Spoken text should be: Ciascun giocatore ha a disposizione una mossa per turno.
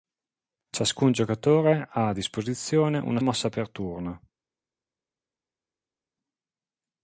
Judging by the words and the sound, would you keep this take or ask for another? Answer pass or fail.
pass